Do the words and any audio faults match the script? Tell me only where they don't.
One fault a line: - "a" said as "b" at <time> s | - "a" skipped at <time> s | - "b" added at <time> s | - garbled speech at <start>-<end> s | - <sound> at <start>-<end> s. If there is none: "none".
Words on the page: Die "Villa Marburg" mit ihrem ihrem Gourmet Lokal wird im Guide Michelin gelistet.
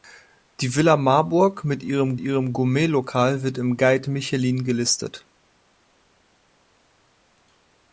none